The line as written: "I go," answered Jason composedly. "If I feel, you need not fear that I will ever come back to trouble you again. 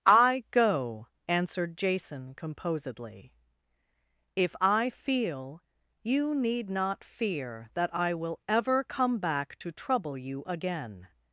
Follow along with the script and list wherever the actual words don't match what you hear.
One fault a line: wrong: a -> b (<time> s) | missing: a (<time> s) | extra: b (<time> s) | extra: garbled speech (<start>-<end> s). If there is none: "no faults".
no faults